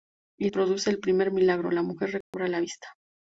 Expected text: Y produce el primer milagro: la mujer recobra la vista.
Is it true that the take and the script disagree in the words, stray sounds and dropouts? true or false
true